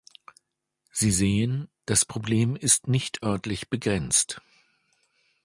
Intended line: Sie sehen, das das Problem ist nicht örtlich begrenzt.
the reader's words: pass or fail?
fail